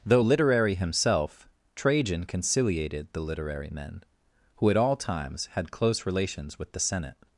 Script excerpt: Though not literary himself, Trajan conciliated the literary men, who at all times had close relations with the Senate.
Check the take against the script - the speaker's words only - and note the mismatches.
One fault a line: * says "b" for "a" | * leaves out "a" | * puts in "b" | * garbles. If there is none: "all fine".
* leaves out "not"